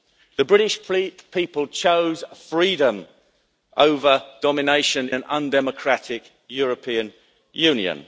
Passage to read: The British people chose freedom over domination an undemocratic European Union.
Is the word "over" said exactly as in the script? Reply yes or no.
yes